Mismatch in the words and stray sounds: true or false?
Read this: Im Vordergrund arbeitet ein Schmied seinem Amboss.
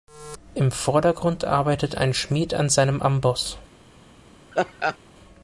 true